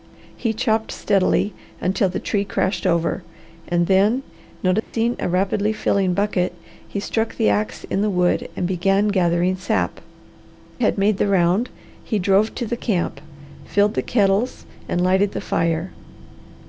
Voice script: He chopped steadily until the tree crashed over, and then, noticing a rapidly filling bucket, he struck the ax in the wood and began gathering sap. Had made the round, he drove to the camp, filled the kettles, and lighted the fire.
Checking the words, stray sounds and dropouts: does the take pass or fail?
fail